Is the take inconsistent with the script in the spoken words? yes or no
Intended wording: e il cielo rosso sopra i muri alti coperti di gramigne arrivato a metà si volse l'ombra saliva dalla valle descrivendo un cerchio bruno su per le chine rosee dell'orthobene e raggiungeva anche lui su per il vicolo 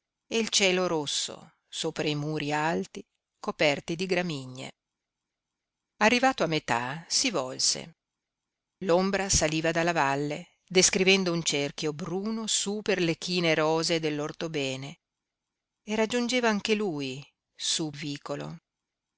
yes